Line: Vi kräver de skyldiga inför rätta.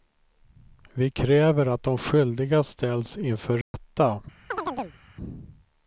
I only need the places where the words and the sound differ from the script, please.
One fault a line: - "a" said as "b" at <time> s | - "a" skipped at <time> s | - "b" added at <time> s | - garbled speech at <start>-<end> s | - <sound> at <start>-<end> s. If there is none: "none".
- "att" added at 1.7 s
- "ställs" added at 2.6 s
- dropout at 3.6-3.7 s
- chirp at 4.5-5.0 s